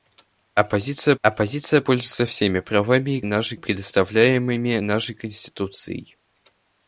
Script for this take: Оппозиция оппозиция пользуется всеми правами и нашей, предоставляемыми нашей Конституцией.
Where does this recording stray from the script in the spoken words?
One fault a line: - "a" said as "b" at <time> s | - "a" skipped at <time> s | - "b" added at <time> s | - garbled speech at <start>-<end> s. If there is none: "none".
none